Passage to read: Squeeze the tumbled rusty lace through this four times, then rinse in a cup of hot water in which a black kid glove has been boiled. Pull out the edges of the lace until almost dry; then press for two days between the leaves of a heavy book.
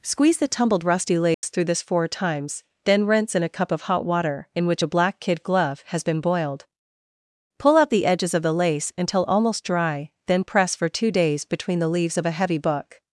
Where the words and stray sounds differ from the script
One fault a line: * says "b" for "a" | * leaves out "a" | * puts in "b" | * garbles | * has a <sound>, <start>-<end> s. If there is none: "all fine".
* has a dropout, 1.3-1.4 s